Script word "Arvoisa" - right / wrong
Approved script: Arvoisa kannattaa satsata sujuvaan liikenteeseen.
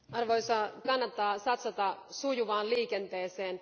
right